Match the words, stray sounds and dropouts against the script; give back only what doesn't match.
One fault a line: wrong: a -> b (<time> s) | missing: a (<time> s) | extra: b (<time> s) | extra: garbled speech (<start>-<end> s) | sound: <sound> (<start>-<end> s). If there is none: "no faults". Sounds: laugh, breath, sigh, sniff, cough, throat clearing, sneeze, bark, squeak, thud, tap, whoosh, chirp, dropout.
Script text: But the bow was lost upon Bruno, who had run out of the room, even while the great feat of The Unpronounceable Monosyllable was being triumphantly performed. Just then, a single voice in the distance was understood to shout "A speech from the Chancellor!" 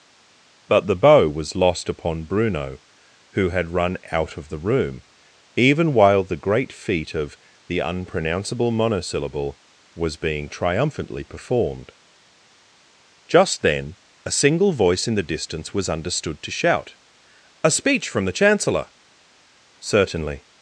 extra: Certainly (19.8 s)